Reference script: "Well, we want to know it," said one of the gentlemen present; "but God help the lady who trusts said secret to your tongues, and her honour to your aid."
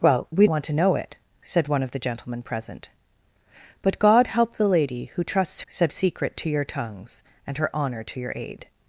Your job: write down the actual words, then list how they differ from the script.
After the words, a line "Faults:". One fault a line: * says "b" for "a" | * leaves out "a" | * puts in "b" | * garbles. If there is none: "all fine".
"Well, we want to know it," said one of the gentlemen present; "but God help the lady who trusts said secret to your tongues, and her honour to your aid."
Faults:
all fine